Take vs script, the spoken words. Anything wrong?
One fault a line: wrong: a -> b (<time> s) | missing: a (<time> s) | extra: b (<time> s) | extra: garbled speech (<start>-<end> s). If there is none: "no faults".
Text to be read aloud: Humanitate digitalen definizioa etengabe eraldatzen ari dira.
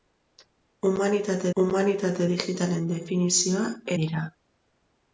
extra: humanitate (1.6 s)
missing: etengabe eraldatzen ari (3.6 s)